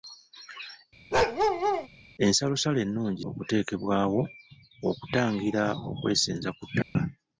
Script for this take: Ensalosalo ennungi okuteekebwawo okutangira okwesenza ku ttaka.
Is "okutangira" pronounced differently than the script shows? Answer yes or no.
no